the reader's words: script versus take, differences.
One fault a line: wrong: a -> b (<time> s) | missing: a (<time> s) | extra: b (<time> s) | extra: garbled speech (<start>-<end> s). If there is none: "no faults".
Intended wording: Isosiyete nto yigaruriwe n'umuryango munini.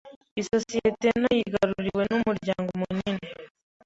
no faults